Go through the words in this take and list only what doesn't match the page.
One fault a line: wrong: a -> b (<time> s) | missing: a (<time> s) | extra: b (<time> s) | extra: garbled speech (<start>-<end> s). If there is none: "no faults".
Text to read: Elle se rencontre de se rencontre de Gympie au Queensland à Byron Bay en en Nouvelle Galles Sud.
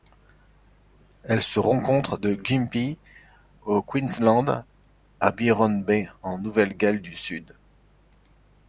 missing: se rencontre de (2.4 s)
missing: en (6.4 s)
extra: du (7.0 s)